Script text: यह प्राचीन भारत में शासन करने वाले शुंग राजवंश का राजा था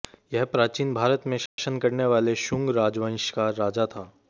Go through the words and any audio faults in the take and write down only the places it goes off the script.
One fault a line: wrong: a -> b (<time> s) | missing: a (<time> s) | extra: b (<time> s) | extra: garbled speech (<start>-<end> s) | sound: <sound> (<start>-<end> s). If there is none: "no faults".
sound: dropout (1.5-1.6 s)